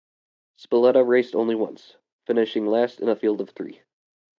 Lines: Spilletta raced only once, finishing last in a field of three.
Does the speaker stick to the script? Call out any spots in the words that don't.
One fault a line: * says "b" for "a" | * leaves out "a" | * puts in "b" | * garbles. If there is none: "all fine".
all fine